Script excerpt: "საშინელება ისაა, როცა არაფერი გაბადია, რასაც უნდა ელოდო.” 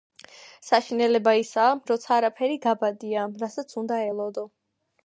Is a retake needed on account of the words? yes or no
no